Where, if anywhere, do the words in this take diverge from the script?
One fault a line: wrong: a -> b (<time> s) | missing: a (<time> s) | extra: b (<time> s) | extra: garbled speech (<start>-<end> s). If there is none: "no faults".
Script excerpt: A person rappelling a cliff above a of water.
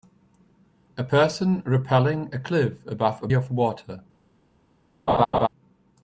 no faults